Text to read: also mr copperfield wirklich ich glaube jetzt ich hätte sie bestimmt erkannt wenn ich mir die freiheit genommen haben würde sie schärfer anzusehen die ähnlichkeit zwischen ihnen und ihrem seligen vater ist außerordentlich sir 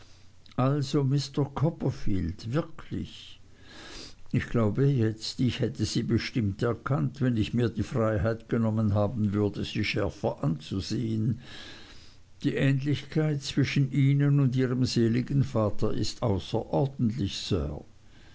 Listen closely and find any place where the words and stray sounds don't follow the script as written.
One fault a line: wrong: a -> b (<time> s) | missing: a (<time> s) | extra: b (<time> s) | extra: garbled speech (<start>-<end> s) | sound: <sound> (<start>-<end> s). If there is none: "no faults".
no faults